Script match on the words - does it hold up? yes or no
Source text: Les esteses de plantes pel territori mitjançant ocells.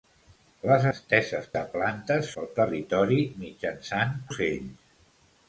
yes